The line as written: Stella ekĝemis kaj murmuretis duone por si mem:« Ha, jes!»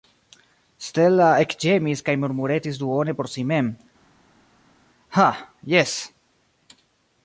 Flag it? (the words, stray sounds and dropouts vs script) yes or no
no